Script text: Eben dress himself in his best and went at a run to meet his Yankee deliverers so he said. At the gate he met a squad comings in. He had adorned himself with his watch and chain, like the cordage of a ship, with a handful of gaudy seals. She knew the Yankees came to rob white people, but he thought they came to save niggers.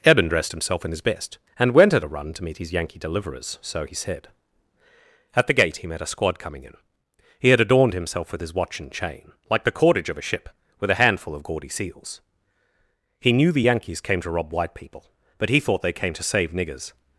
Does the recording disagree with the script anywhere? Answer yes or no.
yes